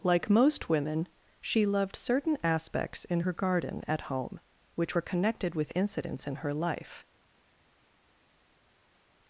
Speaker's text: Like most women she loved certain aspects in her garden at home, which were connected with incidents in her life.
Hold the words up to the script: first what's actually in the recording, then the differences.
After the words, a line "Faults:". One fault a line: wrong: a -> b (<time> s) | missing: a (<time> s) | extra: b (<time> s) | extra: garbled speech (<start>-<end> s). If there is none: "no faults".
Like most women she loved certain aspects in her garden at home, which were connected with incidents in her life.
Faults:
no faults